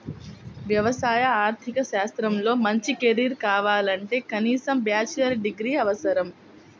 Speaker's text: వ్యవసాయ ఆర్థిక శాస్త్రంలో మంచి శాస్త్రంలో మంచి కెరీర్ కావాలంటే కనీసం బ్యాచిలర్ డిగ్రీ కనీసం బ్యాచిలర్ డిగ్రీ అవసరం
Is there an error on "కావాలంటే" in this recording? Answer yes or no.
no